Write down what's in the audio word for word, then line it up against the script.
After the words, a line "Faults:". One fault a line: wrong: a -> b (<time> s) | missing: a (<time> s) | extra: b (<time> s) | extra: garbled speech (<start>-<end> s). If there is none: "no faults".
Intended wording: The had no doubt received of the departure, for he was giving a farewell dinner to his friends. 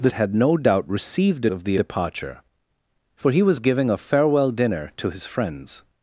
The had no doubt received of the departure, for he was giving a farewell dinner to his friends.
Faults:
no faults